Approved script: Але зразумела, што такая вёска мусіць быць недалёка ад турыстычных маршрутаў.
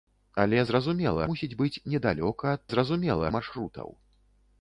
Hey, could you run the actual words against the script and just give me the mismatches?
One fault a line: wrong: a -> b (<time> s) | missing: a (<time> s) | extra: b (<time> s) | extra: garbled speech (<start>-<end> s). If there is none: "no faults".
missing: што такая вёска (1.3 s)
wrong: турыстычных -> зразумела (2.7 s)